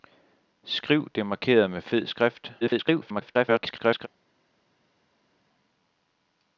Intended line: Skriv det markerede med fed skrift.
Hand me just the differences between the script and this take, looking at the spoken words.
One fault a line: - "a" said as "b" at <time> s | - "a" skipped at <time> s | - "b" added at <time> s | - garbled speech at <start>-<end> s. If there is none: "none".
- garbled speech at 2.6-4.1 s